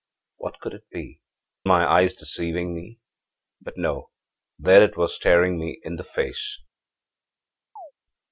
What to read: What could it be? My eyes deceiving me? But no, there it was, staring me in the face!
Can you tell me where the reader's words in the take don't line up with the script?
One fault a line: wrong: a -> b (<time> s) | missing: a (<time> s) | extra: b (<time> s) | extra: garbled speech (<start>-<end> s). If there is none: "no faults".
no faults